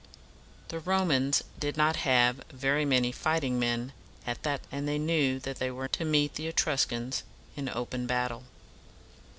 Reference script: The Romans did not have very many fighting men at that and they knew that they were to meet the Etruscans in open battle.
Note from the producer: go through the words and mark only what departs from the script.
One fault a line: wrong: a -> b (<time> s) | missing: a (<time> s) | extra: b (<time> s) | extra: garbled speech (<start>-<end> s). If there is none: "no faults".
no faults